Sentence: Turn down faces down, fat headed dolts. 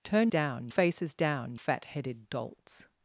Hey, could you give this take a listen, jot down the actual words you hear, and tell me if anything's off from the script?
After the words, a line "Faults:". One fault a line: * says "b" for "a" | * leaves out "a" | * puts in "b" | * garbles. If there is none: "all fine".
Turn down faces down, fat headed dolts.
Faults:
all fine